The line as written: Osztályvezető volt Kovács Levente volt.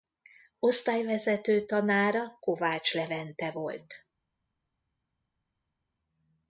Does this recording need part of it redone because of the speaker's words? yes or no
yes